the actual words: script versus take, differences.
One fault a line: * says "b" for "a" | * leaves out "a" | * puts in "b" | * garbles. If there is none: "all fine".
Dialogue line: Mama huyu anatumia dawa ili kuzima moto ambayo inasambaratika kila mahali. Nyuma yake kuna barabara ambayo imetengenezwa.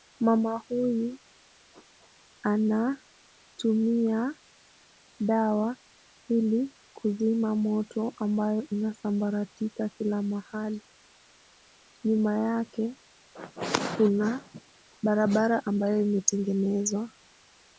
all fine